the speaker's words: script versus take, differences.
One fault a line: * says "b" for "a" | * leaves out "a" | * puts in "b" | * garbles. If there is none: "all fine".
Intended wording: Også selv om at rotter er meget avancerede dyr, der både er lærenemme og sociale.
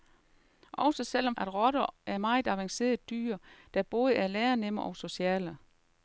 all fine